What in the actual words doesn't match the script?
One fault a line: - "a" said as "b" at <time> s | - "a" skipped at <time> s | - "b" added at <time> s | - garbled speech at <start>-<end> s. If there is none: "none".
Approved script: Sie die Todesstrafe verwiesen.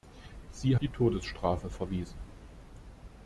none